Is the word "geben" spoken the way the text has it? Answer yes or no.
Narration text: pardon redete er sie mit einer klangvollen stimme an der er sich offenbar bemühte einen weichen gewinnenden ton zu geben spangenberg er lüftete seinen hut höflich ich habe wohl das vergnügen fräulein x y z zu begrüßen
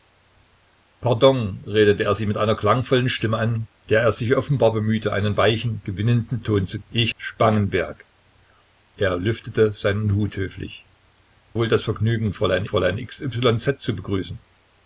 no